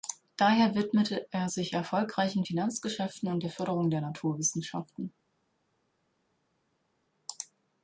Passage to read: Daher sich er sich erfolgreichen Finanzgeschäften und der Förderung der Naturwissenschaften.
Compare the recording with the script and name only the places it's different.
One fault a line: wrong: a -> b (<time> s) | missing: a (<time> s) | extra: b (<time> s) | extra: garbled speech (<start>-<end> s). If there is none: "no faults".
wrong: sich -> widmete (0.7 s)